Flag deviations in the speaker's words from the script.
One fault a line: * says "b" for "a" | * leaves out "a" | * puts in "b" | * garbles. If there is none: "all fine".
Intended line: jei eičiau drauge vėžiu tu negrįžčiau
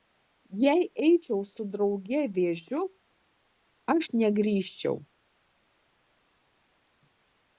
* puts in "su"
* says "aš" for "tu"